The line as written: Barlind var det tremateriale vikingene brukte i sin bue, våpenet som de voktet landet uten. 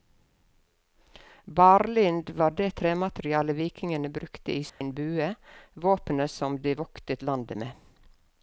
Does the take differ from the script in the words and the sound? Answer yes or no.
yes